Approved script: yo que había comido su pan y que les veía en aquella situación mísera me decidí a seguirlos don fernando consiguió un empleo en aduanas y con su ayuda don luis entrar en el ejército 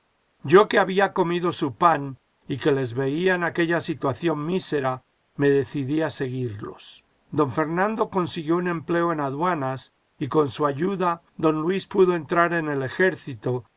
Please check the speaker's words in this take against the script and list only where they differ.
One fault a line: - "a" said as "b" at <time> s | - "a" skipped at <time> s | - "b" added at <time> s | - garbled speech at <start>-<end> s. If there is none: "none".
- "pudo" added at 11.8 s